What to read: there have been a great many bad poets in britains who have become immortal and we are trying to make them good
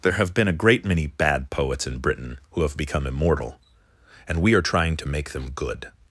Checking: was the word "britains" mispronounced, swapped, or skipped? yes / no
yes